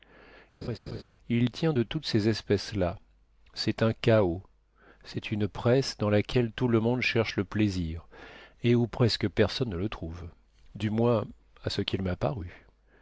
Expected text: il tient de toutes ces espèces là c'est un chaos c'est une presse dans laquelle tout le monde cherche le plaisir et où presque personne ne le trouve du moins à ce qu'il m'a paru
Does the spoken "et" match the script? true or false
true